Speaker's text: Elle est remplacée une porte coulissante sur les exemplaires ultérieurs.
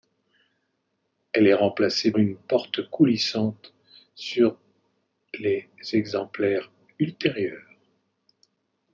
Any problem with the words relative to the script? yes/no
no